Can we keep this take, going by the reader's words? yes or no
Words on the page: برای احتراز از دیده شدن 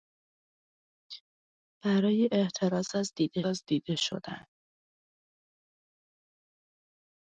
no